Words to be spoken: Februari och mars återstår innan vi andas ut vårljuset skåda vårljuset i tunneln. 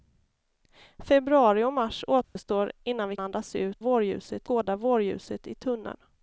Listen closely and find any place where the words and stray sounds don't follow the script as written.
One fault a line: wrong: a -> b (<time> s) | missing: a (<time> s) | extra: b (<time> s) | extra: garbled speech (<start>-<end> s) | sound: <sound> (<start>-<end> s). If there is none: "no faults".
sound: dropout (2.2-2.4 s)